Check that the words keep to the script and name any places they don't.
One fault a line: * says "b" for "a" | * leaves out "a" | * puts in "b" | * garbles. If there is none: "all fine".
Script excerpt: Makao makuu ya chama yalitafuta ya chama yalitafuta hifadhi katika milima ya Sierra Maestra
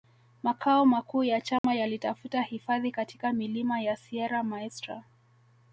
* leaves out "ya chama yalitafuta"